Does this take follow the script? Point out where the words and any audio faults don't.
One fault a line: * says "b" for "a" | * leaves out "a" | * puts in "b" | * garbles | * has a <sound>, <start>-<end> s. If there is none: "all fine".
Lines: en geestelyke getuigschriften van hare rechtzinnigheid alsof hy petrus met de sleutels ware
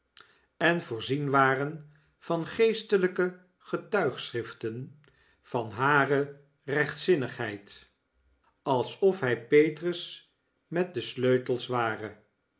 * puts in "voorzien waren van"